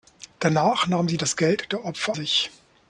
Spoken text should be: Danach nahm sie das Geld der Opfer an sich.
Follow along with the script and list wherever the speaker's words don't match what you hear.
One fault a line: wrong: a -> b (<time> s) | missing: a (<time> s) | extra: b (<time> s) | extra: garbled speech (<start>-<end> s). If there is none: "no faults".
missing: an (2.2 s)